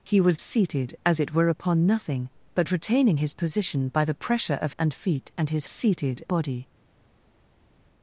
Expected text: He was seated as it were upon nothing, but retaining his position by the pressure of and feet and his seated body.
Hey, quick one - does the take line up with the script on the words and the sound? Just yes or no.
yes